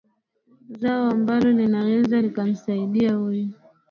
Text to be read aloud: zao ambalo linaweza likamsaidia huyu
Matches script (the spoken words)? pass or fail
pass